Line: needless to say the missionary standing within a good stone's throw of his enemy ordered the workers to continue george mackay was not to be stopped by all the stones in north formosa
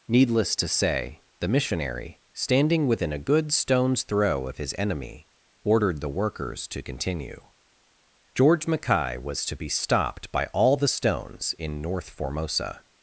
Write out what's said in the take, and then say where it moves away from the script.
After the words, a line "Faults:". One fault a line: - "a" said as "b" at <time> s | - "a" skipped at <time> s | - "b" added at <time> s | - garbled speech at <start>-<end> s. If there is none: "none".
needless to say the missionary standing within a good stone's throw of his enemy ordered the workers to continue george mackay was to be stopped by all the stones in north formosa
Faults:
- "not" skipped at 9.4 s